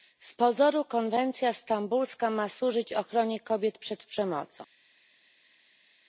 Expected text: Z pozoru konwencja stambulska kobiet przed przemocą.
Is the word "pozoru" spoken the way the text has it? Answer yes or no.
yes